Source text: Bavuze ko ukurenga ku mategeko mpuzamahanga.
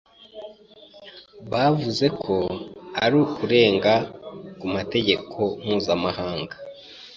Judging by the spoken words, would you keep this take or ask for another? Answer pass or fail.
fail